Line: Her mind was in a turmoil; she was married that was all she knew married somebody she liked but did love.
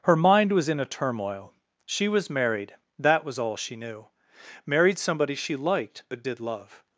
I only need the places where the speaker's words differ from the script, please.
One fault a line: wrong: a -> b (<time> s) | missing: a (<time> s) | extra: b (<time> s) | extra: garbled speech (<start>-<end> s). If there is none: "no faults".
no faults